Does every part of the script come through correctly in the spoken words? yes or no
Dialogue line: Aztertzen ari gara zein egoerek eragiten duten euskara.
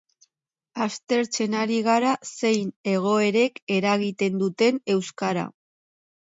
yes